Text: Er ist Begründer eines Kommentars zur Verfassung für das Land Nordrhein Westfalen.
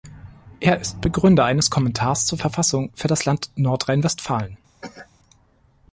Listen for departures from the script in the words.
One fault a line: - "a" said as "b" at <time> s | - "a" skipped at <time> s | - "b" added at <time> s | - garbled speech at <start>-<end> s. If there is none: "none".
none